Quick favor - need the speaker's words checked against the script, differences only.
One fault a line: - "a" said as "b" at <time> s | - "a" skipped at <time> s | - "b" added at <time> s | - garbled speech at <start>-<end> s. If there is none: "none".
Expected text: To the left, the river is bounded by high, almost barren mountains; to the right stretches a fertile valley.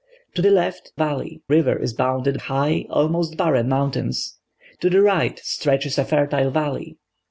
- "the" said as "valley" at 1.0 s
- "by" skipped at 2.4 s